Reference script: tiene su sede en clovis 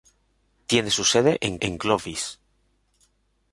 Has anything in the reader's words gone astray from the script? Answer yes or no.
yes